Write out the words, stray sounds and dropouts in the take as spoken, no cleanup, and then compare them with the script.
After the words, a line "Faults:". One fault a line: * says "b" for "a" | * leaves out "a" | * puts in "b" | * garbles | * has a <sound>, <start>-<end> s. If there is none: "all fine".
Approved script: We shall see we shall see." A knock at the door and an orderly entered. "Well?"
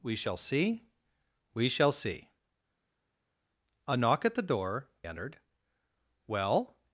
We shall see we shall see." A knock at the door entered. "Well?"
Faults:
* leaves out "and an orderly"